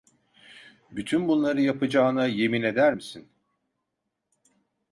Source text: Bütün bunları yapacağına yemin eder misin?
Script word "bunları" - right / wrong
right